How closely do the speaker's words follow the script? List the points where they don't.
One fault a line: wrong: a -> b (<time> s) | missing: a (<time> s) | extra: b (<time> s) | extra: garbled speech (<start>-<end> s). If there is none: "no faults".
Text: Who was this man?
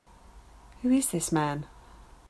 wrong: was -> is (0.9 s)